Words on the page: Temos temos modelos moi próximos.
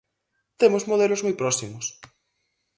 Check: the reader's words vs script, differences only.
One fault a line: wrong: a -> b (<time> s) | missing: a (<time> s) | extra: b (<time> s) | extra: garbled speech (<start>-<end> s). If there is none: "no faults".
missing: temos (0.9 s)